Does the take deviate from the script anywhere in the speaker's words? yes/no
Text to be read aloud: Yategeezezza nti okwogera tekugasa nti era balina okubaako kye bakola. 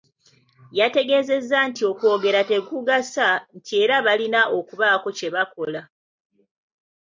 no